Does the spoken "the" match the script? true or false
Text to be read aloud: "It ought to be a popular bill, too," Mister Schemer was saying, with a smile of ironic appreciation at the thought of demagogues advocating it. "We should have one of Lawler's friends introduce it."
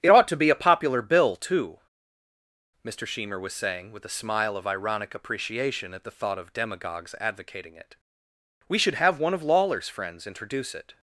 true